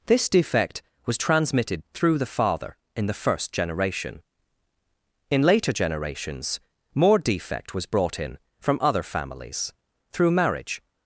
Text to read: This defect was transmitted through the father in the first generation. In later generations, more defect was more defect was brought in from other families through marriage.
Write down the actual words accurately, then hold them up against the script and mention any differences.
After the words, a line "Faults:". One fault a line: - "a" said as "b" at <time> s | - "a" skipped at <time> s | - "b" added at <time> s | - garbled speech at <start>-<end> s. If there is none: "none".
This defect was transmitted through the father in the first generation. In later generations, more defect was brought in from other families through marriage.
Faults:
- "more defect was" skipped at 7.8 s